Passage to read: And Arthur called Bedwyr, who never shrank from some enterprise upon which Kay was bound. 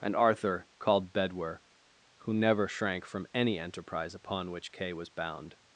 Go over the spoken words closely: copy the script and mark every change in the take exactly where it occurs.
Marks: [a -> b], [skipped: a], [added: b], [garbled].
And Arthur called Bedwyr, who never shrank from [some -> any] enterprise upon which Kay was bound.